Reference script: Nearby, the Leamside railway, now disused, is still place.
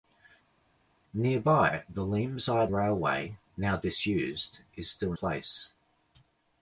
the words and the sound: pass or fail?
pass